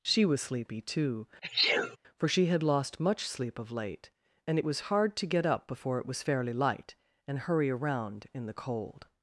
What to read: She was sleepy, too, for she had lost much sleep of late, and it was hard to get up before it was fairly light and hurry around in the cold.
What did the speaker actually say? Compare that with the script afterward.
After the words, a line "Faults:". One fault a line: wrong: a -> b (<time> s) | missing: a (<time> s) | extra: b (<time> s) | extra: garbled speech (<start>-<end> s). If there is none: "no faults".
She was sleepy, too, for she had lost much sleep of late, and it was hard to get up before it was fairly light and hurry around in the cold.
Faults:
no faults